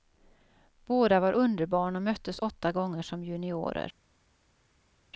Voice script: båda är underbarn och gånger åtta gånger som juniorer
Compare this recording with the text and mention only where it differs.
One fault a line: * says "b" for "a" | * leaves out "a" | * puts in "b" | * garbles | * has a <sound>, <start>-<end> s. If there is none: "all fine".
* says "var" for "är"
* says "möttes" for "gånger"